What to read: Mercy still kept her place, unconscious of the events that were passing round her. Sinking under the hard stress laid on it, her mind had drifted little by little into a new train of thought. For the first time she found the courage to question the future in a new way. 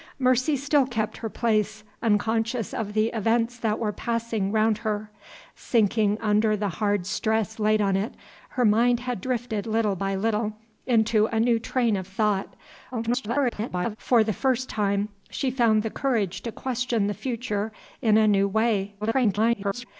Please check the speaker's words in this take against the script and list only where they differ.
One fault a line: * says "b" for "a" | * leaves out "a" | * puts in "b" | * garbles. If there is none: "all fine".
* garbles
* garbles